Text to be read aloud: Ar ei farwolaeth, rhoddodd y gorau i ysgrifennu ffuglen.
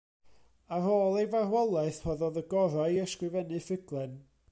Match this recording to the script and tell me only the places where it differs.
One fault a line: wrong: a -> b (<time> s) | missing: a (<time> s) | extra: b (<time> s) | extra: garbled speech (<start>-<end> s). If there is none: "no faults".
extra: ôl (0.9 s)